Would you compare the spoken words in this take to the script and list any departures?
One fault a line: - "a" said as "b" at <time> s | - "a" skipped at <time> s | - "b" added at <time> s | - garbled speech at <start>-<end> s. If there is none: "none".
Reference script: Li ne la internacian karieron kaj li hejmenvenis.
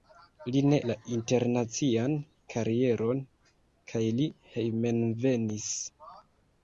none